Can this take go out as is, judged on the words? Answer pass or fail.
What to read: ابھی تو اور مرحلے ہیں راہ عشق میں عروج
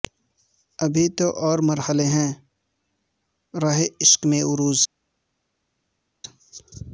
pass